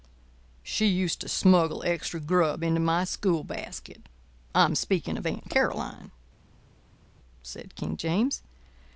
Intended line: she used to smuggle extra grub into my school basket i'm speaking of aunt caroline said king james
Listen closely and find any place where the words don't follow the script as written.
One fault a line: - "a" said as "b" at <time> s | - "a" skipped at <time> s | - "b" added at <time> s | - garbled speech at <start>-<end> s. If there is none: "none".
none